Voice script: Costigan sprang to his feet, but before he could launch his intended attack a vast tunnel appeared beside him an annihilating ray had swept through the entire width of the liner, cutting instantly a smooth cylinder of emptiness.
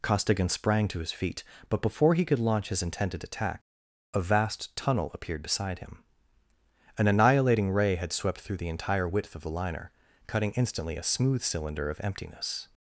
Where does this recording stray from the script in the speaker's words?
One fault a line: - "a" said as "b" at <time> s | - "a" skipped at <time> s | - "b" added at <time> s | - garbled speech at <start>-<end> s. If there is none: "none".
none